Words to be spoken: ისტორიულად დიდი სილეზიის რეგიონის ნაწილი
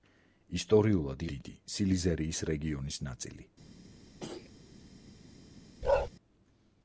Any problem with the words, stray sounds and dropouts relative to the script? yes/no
yes